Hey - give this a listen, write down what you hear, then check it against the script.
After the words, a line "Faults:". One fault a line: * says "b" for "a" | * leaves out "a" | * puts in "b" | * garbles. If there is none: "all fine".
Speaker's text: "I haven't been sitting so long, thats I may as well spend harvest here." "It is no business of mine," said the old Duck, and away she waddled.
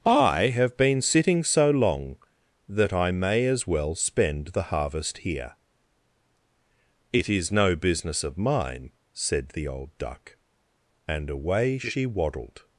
"I have been sitting so long, that I may as well spend the harvest here." "It is no business of mine," said the old Duck, and away she waddled.
Faults:
* says "have" for "haven't"
* says "that" for "thats"
* puts in "the"